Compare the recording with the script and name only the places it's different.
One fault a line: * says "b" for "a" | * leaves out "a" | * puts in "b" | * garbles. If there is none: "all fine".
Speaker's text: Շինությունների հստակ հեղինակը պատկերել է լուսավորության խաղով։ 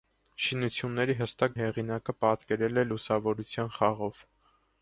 all fine